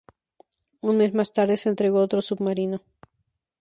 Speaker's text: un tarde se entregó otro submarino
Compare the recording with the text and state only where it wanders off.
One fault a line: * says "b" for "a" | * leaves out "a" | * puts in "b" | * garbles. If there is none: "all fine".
* puts in "mes más"